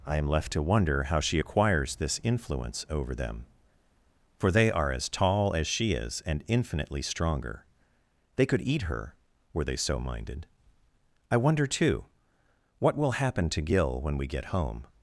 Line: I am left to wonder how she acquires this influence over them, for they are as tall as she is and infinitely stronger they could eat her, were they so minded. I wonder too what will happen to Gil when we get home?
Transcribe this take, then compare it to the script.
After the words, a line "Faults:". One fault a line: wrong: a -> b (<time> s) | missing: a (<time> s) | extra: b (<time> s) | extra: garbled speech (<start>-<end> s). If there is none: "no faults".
I am left to wonder how she acquires this influence over them, for they are as tall as she is and infinitely stronger they could eat her, were they so minded. I wonder too what will happen to Gil when we get home?
Faults:
no faults